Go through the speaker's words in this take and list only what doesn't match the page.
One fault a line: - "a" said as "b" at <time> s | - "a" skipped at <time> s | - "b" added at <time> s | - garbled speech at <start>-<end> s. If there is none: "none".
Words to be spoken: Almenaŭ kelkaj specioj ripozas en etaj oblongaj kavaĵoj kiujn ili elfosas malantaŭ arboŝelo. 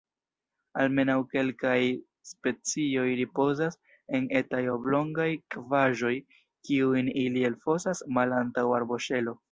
none